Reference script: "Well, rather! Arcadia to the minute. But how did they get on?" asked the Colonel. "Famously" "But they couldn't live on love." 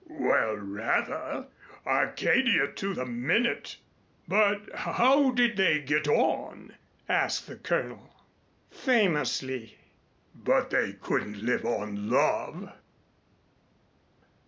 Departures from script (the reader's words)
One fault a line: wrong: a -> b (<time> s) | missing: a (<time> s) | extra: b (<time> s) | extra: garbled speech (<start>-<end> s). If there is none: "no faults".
no faults